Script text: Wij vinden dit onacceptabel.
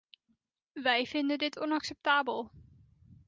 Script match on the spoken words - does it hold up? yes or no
yes